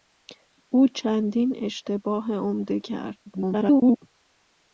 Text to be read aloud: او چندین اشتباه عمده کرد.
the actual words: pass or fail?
fail